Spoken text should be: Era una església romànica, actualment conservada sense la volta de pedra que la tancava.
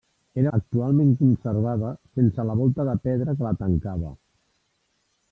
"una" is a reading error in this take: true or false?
true